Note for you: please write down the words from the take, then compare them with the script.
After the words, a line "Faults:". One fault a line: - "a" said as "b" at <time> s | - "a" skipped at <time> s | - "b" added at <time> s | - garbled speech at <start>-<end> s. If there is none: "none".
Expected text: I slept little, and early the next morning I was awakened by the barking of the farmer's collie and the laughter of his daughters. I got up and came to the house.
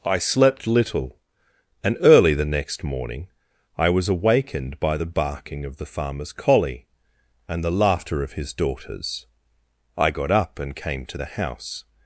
I slept little, and early the next morning I was awakened by the barking of the farmer's collie and the laughter of his daughters. I got up and came to the house.
Faults:
none